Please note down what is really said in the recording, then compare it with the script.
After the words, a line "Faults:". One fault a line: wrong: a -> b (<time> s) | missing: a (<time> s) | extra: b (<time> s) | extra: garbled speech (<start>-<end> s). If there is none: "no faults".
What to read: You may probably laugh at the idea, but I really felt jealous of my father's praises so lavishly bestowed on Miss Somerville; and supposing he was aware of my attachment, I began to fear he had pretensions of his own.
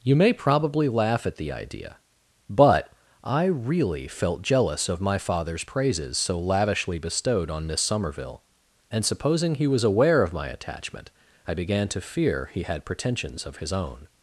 You may probably laugh at the idea, but I really felt jealous of my father's praises so lavishly bestowed on Miss Somerville; and supposing he was aware of my attachment, I began to fear he had pretensions of his own.
Faults:
no faults